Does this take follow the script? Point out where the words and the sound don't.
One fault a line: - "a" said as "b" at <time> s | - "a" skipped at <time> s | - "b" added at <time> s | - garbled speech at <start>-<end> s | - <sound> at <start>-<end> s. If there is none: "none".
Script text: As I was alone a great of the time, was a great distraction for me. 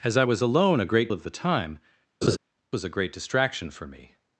- laugh at 2.2-2.4 s